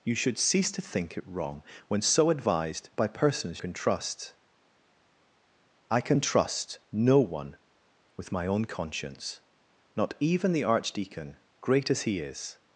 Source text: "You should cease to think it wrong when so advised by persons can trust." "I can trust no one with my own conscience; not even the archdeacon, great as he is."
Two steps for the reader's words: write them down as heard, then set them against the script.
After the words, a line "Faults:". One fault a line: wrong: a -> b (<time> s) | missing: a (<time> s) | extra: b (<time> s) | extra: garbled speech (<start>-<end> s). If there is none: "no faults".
"You should cease to think it wrong when so advised by persons can trust." "I can trust no one with my own conscience; not even the archdeacon, great as he is."
Faults:
no faults